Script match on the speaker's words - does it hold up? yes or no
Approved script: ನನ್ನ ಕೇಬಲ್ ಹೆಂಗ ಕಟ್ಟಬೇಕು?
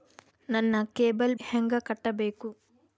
yes